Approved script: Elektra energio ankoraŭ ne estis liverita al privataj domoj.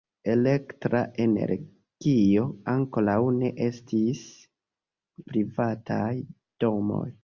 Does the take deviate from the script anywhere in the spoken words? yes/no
yes